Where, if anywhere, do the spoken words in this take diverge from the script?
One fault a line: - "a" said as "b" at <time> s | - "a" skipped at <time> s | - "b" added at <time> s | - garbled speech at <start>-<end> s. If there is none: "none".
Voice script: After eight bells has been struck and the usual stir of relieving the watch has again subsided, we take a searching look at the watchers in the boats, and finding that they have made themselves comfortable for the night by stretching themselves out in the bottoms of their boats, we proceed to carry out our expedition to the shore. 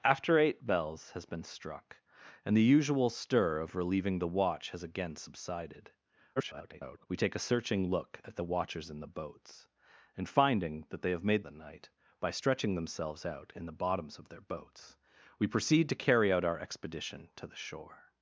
- garbled speech at 6.4-7.1 s
- "themselves comfortable for" skipped at 11.4 s